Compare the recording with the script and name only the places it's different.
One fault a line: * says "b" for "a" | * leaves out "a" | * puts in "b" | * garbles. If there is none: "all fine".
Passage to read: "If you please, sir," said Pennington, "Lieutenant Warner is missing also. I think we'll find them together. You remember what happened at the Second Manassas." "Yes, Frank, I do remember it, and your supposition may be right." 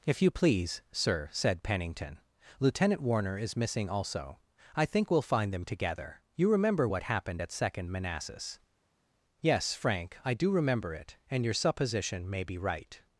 * leaves out "the"